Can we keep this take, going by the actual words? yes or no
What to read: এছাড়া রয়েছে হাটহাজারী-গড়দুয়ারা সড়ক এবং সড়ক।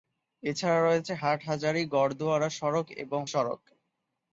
yes